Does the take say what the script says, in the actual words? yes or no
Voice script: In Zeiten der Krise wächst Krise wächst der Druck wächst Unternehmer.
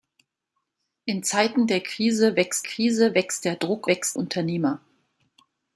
yes